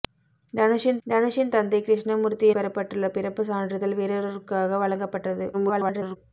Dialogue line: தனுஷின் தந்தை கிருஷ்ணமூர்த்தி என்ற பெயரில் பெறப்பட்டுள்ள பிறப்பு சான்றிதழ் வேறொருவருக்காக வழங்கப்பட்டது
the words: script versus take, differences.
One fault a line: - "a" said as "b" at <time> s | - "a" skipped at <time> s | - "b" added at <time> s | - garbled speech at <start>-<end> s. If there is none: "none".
- "தனுஷின்" added at 1.1 s
- "என்ற பெயரில்" skipped at 2.5 s
- garbled speech at 5.5-6.2 s